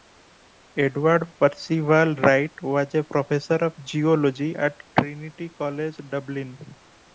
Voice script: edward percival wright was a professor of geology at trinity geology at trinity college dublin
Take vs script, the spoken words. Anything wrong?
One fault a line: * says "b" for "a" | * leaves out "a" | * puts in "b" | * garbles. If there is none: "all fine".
* leaves out "geology at trinity"